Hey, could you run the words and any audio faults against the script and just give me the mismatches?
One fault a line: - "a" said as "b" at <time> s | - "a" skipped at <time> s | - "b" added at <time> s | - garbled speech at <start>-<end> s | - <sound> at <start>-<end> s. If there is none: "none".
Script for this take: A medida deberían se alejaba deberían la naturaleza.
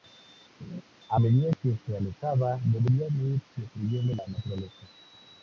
- laugh at 0.6-0.8 s
- "deberían" said as "que" at 1.6 s
- "ir destruyendo" added at 3.2 s